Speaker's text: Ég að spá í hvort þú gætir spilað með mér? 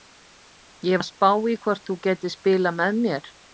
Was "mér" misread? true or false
false